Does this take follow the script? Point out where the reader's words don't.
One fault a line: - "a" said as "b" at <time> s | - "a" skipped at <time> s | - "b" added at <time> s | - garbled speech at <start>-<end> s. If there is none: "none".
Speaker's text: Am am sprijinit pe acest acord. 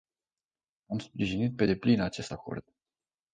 - "am" skipped at 1.0 s
- "deplin" added at 1.6 s